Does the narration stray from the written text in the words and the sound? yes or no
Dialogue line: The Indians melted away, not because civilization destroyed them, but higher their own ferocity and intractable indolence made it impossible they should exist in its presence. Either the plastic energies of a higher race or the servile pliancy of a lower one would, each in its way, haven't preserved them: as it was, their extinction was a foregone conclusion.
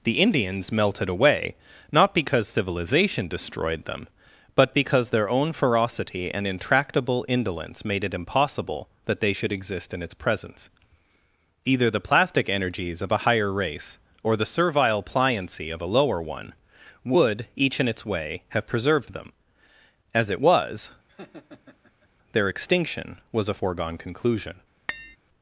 yes